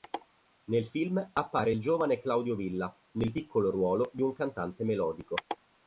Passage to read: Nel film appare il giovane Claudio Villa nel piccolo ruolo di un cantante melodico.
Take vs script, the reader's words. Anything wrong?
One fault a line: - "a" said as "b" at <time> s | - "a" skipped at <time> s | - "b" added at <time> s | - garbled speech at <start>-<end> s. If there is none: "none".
none